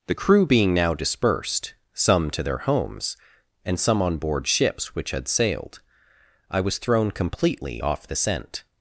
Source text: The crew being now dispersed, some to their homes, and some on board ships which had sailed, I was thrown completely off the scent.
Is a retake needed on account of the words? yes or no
no